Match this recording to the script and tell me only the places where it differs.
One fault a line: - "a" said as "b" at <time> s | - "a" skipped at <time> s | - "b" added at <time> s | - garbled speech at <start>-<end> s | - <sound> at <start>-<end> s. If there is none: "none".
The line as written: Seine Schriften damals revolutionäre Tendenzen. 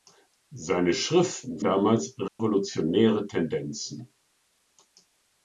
- dropout at 2.3-2.4 s